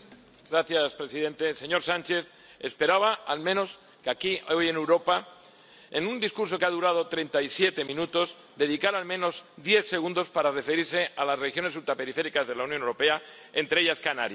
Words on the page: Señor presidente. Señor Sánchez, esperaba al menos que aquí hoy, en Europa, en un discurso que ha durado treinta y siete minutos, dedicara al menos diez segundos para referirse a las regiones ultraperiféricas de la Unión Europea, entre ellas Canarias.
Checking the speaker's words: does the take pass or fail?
pass